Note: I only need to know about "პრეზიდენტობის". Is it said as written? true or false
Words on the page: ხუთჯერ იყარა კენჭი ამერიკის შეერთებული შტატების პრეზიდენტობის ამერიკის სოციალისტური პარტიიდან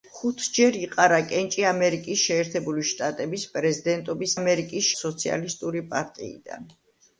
true